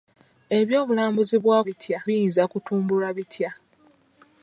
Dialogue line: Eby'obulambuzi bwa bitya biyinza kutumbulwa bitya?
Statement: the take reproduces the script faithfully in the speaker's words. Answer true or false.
true